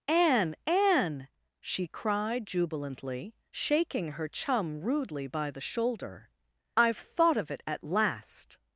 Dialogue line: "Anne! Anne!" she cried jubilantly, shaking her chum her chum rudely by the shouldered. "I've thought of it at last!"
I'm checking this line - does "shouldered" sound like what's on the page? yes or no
no